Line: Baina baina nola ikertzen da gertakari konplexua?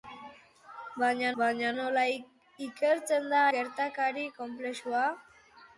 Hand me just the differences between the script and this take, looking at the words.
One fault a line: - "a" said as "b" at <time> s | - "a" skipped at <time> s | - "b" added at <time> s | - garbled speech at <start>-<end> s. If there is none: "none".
none